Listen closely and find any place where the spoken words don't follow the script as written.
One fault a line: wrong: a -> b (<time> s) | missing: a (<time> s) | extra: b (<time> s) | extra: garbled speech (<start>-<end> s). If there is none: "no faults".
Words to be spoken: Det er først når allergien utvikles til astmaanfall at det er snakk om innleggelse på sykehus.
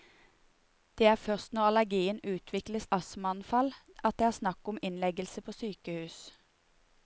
missing: til (2.9 s)